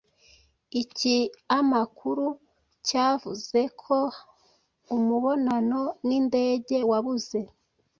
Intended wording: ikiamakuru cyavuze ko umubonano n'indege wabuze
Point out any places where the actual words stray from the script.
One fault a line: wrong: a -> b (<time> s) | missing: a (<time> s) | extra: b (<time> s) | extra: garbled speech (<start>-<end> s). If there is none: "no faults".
no faults